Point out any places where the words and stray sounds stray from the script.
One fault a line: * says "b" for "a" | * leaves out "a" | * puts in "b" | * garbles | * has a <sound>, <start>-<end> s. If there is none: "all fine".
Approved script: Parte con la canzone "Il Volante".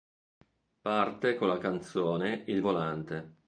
all fine